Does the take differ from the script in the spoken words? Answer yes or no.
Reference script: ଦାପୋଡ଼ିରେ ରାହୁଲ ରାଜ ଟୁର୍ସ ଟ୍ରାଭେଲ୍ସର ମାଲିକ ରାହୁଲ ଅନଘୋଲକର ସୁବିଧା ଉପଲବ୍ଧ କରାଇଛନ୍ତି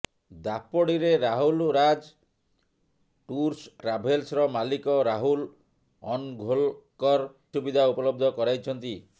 no